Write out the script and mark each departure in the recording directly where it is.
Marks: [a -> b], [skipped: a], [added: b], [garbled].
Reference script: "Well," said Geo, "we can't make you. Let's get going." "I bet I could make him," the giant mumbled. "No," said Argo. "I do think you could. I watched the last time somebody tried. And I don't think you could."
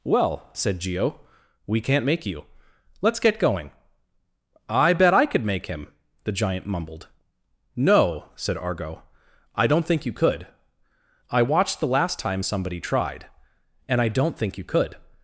"Well," said Geo, "we can't make you. Let's get going." "I bet I could make him," the giant mumbled. "No," said Argo. "I [do -> don't] think you could. I watched the last time somebody tried. And I don't think you could."